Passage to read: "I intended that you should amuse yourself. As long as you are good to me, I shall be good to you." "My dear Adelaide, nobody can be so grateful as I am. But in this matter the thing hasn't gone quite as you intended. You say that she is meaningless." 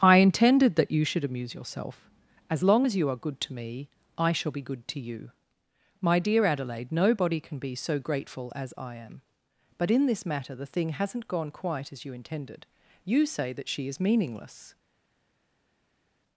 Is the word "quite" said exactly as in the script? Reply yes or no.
yes